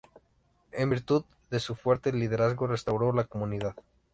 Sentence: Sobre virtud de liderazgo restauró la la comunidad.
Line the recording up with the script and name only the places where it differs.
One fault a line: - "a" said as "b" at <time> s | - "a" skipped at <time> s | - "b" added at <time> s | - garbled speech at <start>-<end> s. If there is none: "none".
- "Sobre" said as "En" at 0.7 s
- "su fuerte" added at 1.6 s
- "la" skipped at 3.2 s